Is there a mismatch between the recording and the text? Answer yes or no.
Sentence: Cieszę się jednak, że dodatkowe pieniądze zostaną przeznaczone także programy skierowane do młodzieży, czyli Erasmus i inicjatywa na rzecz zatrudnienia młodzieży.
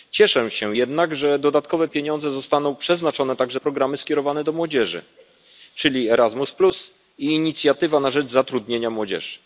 no